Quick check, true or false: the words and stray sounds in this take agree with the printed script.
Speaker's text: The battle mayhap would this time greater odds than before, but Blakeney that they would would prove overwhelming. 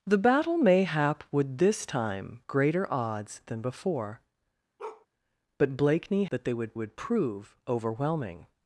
false